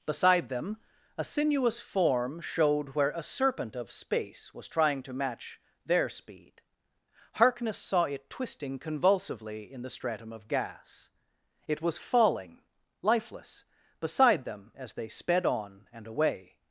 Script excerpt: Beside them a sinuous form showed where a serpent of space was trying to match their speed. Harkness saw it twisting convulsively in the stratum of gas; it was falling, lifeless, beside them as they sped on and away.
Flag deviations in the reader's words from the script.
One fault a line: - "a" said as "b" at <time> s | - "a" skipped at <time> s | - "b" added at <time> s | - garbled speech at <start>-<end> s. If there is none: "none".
none